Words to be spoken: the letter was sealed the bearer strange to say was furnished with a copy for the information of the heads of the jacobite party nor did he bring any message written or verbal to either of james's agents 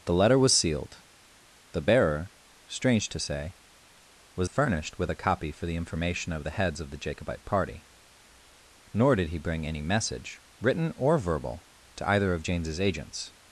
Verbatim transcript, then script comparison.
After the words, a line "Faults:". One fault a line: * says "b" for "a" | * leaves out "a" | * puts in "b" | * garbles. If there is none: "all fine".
the letter was sealed the bearer strange to say was furnished with a copy for the information of the heads of the jacobite party nor did he bring any message written or verbal to either of james's agents
Faults:
all fine